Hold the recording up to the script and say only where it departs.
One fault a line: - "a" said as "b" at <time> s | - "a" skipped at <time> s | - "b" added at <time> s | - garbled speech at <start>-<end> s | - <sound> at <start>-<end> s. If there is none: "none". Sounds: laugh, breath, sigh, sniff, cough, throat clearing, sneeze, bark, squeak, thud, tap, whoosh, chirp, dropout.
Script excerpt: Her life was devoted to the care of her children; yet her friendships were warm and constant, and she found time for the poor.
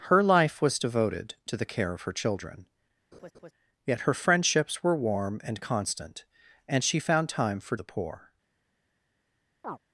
- laugh at 3.1-3.5 s
- chirp at 9.6-9.8 s